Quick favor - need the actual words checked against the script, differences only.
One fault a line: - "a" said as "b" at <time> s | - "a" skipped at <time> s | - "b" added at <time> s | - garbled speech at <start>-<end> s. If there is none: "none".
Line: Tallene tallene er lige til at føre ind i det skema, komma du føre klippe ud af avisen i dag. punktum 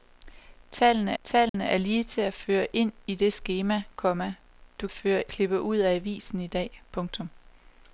none